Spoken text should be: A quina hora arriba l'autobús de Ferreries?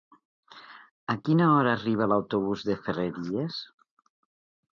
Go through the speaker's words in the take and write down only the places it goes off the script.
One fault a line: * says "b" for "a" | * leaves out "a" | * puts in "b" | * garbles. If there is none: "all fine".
all fine